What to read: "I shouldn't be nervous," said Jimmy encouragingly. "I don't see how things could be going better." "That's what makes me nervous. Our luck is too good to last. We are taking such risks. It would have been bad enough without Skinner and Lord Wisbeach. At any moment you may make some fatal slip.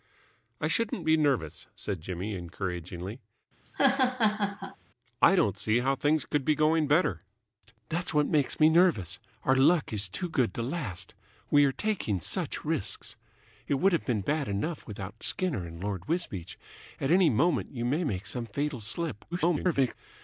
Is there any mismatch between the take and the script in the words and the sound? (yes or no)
yes